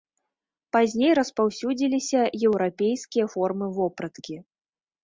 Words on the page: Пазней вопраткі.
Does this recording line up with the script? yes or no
no